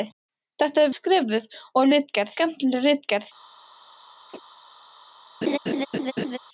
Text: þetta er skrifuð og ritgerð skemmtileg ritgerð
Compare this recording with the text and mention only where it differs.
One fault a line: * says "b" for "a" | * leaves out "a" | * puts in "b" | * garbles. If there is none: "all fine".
all fine